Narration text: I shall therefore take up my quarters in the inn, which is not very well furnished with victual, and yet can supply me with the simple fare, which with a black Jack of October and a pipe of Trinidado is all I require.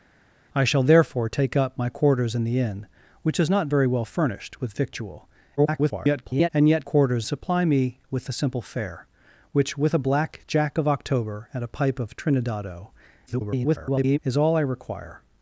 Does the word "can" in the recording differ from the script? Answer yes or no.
yes